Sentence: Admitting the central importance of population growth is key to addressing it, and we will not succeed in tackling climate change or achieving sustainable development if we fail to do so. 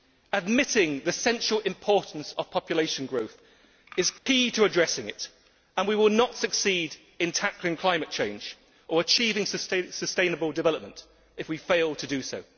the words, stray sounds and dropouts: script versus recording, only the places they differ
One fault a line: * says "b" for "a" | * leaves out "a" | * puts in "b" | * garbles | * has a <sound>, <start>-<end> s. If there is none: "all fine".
* has a dropout, 4.2-4.3 s